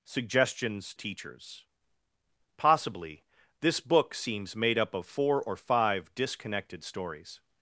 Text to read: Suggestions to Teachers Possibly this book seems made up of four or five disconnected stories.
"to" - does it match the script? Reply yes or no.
no